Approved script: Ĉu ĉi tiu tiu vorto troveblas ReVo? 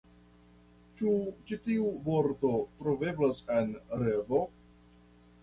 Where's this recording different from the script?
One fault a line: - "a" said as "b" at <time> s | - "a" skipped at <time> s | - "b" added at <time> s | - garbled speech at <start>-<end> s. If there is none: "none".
- "tiu" skipped at 1.9 s
- "en" added at 3.6 s